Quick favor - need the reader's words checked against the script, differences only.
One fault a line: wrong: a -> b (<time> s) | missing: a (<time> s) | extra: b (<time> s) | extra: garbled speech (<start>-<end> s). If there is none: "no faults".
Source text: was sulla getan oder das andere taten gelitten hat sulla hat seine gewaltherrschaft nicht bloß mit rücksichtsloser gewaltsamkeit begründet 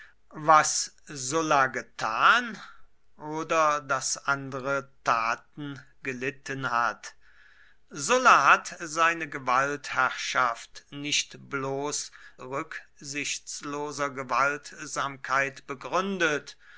missing: mit (12.1 s)